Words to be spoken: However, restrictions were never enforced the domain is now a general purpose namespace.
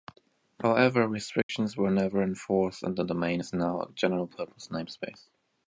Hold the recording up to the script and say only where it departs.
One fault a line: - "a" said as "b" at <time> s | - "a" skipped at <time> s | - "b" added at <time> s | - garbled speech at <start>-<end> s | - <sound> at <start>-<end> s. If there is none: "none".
- dropout at 1.4-1.5 s
- "and" added at 2.8 s